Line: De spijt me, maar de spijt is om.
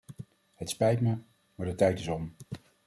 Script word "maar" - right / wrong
right